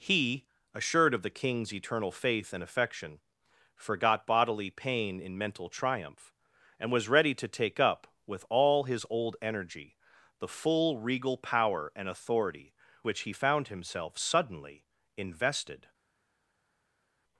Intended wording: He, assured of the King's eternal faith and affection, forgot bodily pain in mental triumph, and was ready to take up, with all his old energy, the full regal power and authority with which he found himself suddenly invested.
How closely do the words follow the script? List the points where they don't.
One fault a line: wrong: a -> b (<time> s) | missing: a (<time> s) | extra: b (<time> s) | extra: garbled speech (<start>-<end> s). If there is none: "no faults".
missing: with (12.7 s)